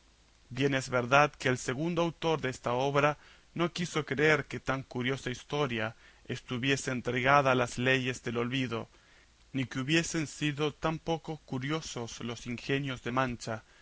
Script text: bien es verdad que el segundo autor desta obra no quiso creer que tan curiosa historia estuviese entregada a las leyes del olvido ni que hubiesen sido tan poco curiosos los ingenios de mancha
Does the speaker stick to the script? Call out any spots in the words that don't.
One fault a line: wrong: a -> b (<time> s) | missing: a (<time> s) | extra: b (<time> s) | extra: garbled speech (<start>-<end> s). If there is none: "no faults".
no faults